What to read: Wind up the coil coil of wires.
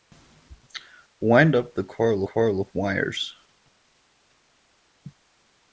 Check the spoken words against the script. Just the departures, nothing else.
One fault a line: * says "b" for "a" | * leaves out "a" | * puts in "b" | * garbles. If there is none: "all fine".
all fine